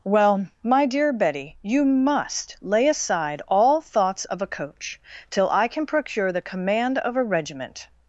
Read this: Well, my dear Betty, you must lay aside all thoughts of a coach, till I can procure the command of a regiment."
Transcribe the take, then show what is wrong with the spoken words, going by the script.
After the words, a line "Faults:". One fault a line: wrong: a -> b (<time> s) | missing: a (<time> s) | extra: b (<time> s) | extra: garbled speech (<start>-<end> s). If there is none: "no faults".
Well, my dear Betty, you must lay aside all thoughts of a coach, till I can procure the command of a regiment."
Faults:
no faults